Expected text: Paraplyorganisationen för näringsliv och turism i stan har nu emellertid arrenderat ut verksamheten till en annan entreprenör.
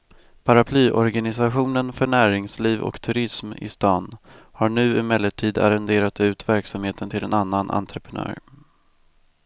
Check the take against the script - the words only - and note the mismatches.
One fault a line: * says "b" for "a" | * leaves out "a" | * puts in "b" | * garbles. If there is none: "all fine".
all fine